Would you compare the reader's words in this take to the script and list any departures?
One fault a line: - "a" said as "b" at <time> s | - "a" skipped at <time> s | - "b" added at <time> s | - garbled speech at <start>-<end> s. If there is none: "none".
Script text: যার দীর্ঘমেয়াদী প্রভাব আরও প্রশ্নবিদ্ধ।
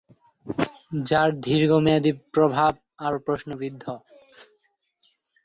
none